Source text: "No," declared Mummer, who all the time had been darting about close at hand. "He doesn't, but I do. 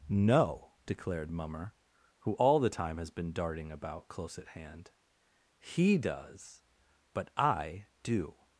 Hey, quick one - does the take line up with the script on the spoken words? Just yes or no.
no